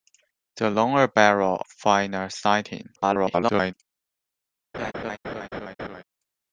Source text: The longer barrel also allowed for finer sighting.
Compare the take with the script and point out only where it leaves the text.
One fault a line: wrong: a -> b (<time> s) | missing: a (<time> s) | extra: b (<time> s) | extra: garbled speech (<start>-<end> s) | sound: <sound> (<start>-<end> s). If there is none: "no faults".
missing: also allowed for (1.6 s)
extra: garbled speech (3.0-3.7 s)
sound: laugh (4.7-6.0 s)